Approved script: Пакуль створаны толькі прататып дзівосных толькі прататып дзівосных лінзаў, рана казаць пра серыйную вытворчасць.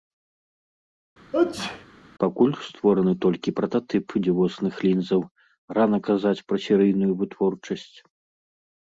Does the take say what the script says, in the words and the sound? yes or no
no